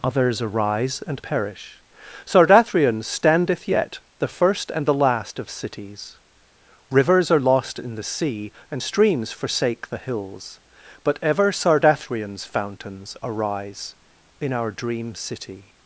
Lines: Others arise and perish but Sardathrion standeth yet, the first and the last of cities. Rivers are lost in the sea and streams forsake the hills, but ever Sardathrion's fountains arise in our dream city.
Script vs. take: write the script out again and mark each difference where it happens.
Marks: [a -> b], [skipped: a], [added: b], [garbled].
Others arise and perish [skipped: but] Sardathrion standeth yet, the first and the last of cities. Rivers are lost in the sea and streams forsake the hills, but ever Sardathrion's fountains arise in our dream city.